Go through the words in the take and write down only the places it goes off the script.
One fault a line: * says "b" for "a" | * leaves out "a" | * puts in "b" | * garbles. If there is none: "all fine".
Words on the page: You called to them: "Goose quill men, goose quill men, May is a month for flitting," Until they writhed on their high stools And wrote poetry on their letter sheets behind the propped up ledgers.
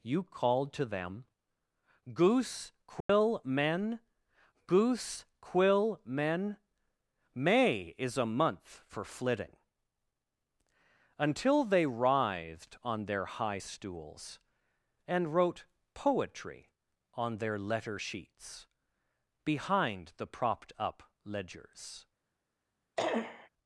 all fine